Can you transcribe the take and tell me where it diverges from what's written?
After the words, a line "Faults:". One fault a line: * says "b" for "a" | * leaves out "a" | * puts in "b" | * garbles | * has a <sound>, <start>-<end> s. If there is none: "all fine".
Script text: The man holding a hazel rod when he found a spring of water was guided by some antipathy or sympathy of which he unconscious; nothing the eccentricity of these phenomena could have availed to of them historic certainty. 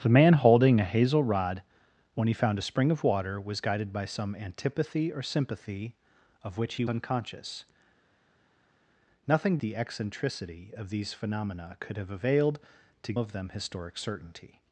The man holding a hazel rod when he found a spring of water was guided by some antipathy or sympathy of which he unconscious; nothing the eccentricity of these phenomena could have availed to of them historic certainty.
Faults:
all fine